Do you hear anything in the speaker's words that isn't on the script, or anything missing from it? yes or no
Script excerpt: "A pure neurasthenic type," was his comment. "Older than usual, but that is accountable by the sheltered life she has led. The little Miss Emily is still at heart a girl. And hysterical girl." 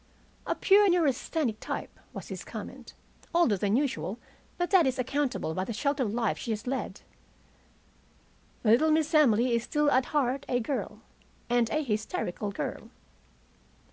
yes